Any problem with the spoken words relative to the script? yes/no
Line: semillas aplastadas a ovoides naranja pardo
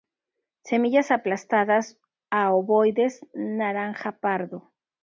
no